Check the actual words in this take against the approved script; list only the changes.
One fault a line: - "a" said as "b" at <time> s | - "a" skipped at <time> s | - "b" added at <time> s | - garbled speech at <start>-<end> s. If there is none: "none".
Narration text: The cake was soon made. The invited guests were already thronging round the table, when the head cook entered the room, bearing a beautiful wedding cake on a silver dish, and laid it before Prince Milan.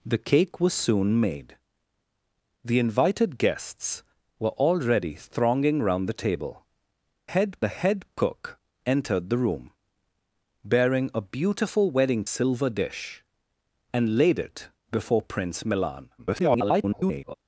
- "when" said as "head" at 7.3 s
- "cake on a" skipped at 12.3 s
- garbled speech at 16.2-17.3 s